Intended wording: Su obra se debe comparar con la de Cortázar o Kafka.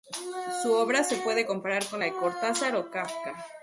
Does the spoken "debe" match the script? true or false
false